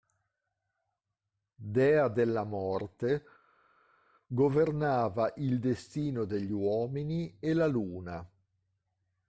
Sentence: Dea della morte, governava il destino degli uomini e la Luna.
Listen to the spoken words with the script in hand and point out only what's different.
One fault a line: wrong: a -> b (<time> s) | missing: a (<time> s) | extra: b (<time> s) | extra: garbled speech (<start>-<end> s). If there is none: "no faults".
no faults